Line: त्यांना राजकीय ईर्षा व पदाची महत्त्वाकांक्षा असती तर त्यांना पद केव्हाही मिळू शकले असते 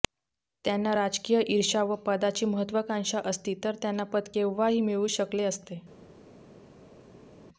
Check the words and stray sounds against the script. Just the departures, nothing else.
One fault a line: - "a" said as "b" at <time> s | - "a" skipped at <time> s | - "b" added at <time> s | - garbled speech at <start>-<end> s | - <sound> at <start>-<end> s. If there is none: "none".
none